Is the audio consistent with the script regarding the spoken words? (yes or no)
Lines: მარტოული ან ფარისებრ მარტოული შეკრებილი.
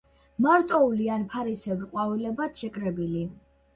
no